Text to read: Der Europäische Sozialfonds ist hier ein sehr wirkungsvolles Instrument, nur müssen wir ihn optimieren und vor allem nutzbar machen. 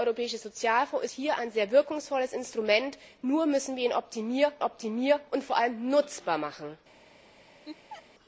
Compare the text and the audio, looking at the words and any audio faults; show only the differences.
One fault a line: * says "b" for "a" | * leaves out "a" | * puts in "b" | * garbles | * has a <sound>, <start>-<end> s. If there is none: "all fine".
* leaves out "ist"
* puts in "optimieren"
* has a laugh, 7.7-8.1 s